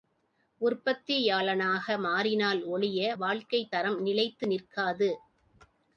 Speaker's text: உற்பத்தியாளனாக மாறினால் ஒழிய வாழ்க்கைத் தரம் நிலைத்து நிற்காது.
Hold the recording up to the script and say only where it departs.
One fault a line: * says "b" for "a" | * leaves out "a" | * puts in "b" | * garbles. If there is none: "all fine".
all fine